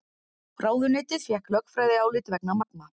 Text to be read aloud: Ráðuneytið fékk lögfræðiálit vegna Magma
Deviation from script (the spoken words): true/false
false